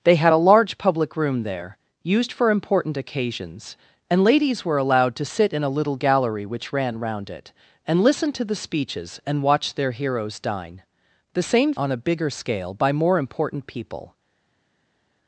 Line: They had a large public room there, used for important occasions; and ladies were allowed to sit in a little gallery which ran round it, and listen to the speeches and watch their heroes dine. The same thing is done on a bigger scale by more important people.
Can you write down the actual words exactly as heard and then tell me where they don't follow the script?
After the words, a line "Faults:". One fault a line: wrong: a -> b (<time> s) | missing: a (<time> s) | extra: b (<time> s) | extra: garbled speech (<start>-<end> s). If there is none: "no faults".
They had a large public room there, used for important occasions; and ladies were allowed to sit in a little gallery which ran round it, and listen to the speeches and watch their heroes dine. The same on a bigger scale by more important people.
Faults:
missing: thing is done (11.7 s)